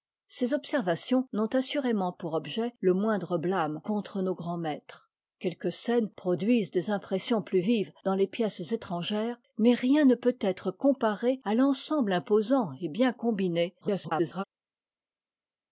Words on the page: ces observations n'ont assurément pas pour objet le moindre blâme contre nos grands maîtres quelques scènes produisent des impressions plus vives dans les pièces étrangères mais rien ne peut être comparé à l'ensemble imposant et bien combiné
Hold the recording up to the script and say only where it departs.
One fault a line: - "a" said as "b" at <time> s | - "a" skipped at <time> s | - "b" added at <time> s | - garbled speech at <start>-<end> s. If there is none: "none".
- "pas" skipped at 2.1 s
- garbled speech at 13.8-14.4 s